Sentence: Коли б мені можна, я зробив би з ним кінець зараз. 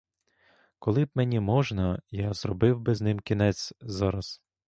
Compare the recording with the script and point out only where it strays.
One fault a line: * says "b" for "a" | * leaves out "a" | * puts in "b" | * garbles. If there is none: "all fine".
all fine